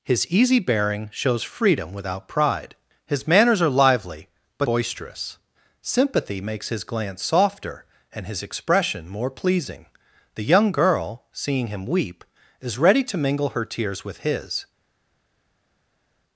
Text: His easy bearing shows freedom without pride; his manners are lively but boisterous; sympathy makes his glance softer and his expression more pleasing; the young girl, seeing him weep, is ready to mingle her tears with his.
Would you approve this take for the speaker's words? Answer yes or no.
yes